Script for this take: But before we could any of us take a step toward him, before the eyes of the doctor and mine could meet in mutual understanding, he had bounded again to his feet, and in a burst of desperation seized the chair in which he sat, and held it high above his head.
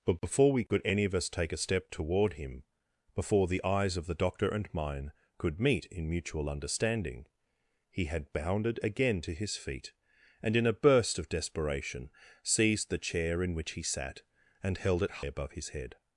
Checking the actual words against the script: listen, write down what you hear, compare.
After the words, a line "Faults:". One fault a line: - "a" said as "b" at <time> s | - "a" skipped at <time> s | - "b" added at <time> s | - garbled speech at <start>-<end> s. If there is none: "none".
But before we could any of us take a step toward him, before the eyes of the doctor and mine could meet in mutual understanding, he had bounded again to his feet, and in a burst of desperation seized the chair in which he sat, and held it above his head.
Faults:
- "high" skipped at 15.2 s